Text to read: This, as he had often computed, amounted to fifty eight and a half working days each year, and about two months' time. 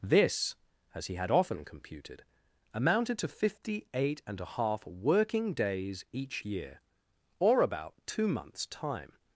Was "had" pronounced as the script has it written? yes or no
yes